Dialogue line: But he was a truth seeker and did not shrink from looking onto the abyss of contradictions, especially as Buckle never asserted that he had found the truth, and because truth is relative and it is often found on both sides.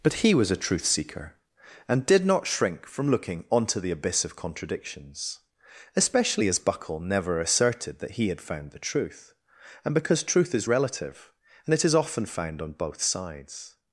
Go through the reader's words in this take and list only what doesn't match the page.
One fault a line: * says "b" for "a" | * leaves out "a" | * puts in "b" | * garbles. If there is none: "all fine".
all fine